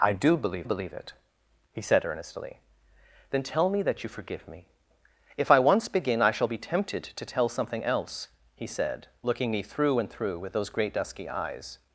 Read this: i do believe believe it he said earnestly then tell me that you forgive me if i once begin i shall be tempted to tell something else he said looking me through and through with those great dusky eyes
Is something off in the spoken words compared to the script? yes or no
no